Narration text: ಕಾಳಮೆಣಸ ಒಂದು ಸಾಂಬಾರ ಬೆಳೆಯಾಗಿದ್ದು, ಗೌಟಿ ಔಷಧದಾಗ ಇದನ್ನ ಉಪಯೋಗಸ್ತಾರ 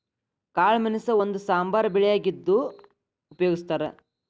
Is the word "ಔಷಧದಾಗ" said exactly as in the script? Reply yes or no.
no